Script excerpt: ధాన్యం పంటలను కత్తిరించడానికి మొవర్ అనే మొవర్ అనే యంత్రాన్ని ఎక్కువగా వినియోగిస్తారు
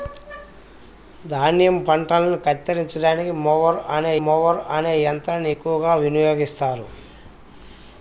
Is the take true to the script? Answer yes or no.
yes